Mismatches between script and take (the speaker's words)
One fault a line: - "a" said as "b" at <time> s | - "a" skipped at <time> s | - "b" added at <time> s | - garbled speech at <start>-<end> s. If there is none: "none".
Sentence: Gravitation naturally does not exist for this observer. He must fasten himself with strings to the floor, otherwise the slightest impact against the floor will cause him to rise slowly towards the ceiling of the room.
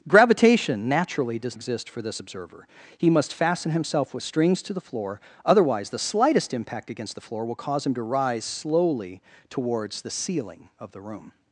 - "not" skipped at 1.6 s